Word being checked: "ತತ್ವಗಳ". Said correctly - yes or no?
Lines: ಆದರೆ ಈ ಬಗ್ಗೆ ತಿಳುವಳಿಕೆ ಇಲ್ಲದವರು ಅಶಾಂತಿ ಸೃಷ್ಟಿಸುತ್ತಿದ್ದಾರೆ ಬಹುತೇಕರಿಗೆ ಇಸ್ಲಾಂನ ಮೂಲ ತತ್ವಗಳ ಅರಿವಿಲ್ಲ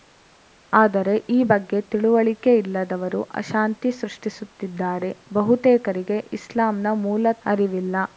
no